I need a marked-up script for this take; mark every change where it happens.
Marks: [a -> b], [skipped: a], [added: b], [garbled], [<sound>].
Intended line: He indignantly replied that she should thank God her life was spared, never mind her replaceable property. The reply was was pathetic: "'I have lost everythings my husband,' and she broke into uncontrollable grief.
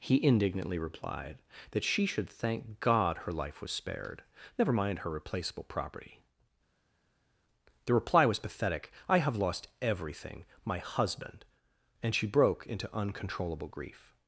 He indignantly replied that she should thank God her life was spared, never mind her replaceable property. The reply was [skipped: was] pathetic: "'I have lost [everythings -> everything] my husband,' and she broke into uncontrollable grief.